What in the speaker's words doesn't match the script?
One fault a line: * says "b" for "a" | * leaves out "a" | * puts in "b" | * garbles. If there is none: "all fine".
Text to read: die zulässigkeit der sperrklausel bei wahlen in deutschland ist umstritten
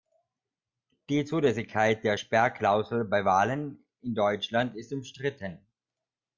all fine